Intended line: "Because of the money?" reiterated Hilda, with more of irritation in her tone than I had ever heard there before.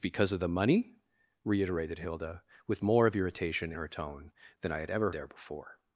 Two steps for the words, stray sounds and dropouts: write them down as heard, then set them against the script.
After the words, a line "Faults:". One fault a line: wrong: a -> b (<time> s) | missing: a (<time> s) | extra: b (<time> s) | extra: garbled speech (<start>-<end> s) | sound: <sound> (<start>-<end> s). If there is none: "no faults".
"Because of the money?" reiterated Hilda, with more of irritation her tone than I had ever there before.
Faults:
missing: in (3.7 s)
missing: heard (5.1 s)